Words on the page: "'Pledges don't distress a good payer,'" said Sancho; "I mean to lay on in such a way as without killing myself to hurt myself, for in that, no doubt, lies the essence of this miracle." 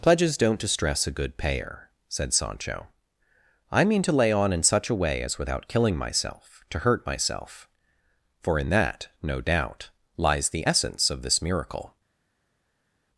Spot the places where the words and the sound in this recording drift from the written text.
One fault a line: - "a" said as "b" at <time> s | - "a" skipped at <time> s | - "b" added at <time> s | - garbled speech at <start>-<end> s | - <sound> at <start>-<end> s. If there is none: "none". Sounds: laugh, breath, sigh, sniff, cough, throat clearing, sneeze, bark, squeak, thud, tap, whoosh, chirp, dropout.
none